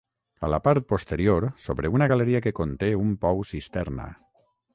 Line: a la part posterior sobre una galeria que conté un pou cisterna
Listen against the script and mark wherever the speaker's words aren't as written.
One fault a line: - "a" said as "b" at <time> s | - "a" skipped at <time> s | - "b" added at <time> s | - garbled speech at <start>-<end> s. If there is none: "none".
none